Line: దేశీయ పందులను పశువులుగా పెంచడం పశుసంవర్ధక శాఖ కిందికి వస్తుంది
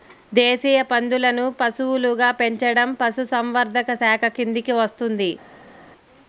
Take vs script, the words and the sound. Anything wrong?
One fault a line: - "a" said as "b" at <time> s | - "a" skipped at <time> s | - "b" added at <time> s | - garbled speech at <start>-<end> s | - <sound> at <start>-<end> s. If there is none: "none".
none